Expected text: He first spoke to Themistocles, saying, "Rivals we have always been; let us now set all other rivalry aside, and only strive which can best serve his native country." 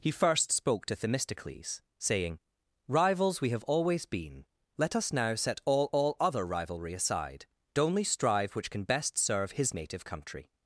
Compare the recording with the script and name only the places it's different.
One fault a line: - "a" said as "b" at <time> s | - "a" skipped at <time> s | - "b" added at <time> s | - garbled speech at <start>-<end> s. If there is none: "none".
- "all" added at 5.9 s
- "and" skipped at 7.4 s